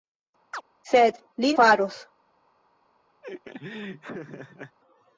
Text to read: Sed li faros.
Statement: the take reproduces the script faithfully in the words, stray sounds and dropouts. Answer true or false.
false